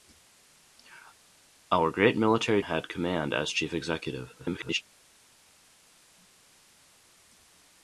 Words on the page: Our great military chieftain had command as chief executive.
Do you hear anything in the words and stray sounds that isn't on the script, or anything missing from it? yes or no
yes